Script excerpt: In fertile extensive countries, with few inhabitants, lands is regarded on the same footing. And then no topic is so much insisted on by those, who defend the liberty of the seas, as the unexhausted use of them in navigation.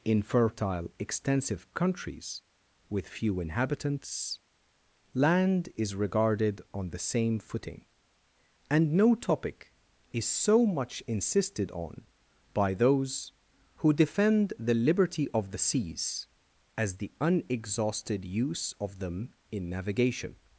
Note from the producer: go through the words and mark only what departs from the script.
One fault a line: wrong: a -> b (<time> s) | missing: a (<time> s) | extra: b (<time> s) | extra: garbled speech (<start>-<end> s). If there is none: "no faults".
wrong: lands -> land (5.1 s)
missing: then (8.9 s)